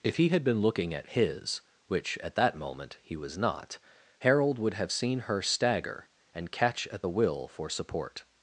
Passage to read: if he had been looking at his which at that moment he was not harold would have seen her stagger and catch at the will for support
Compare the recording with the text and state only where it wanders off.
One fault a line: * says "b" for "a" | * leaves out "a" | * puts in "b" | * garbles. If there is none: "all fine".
all fine